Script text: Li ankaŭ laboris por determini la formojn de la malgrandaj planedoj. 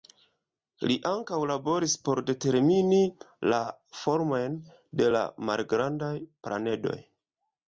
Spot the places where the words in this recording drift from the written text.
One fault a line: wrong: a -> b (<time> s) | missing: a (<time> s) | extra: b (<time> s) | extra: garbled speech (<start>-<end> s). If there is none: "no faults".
no faults